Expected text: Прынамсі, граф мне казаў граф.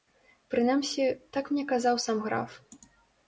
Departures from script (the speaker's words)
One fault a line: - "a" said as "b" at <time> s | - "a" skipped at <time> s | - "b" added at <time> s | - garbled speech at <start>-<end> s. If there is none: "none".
- "граф" said as "так" at 1.4 s
- "сам" added at 2.0 s